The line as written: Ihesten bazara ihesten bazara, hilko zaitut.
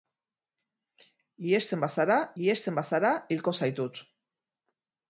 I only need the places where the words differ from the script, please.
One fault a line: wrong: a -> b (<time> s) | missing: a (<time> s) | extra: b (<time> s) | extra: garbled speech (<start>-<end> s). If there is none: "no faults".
no faults